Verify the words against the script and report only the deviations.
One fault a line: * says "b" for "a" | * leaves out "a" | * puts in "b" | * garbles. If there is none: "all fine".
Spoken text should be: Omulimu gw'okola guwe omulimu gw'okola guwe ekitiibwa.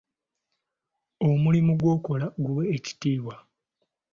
* leaves out "omulimu gw'okola guwe"